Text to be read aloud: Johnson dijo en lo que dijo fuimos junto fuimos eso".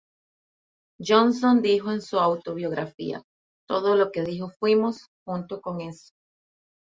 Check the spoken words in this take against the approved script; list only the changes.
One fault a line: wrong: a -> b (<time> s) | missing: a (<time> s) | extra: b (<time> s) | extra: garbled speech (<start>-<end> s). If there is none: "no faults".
extra: su autobiografía Todo (2.0 s)
wrong: fuimos -> con (5.6 s)